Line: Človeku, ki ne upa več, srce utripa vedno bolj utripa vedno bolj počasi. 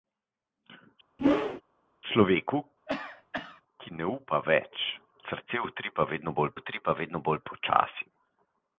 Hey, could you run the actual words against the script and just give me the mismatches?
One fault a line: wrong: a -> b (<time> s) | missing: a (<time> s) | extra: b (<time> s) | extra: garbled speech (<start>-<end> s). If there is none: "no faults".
no faults